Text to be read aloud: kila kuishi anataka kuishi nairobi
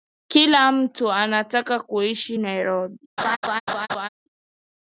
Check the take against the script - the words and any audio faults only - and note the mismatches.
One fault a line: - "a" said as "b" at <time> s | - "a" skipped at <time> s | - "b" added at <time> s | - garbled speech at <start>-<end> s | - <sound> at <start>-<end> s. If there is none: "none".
- "kuishi" said as "mtu" at 0.7 s
- laugh at 3.2-4.1 s